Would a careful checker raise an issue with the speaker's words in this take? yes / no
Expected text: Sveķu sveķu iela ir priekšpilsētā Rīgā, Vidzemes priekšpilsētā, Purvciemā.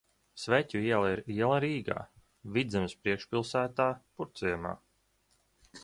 yes